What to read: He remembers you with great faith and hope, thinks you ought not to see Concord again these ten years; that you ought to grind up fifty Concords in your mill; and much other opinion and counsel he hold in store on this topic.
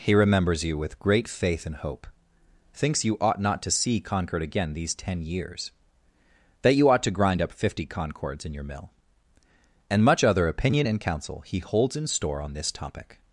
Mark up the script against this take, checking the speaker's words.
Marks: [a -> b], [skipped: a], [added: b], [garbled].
He remembers you with great faith and hope, thinks you ought not to see Concord again these ten years; that you ought to grind up fifty Concords in your mill; and much other opinion and counsel he [hold -> holds] in store on this topic.